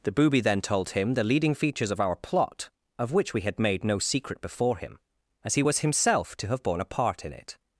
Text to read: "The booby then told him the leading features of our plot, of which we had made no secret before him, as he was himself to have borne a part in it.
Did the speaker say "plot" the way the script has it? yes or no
yes